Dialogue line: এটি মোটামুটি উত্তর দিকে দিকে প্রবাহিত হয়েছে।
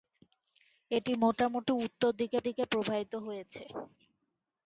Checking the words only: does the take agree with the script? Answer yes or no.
yes